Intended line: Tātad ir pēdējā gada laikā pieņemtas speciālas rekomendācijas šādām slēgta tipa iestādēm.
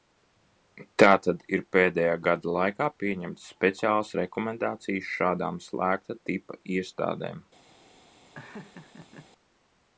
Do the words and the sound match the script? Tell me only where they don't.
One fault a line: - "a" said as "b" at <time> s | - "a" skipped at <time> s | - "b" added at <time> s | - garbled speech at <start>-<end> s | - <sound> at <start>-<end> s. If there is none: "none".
- laugh at 8.3-9.3 s